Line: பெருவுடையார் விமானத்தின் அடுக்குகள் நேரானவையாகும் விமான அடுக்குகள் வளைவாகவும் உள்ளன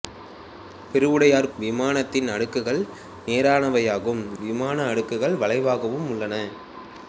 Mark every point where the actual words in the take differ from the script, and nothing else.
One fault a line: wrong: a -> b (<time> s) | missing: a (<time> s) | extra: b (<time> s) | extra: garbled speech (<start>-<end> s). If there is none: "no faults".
no faults